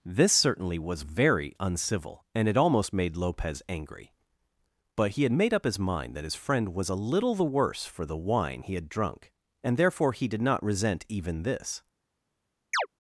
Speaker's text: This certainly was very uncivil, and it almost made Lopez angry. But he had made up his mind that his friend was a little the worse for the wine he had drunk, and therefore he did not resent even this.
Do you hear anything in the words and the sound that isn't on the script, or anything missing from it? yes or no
yes